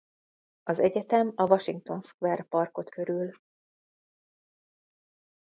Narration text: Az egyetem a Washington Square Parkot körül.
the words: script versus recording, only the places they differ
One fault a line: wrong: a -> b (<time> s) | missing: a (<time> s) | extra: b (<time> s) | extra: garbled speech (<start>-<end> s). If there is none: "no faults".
no faults